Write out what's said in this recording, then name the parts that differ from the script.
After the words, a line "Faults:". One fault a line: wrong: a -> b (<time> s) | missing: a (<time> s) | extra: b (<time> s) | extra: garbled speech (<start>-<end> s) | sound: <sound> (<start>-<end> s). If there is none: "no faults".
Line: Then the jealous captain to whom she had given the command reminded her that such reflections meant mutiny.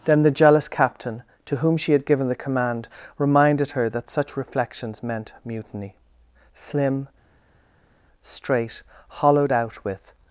Then the jealous captain to whom she had given the command reminded her that such reflections meant mutiny. Slim, straight, hollowed out with
Faults:
extra: Slim straight hollowed out with (6.5 s)